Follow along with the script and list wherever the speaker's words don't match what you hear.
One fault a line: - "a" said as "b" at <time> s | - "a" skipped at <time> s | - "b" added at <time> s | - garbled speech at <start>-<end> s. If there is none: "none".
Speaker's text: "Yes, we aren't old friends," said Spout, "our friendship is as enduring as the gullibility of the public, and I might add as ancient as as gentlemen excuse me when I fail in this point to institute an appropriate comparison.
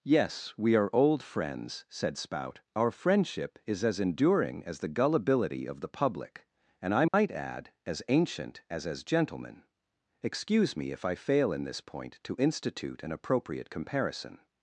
- "aren't" said as "are" at 0.8 s
- "when" said as "if" at 10.9 s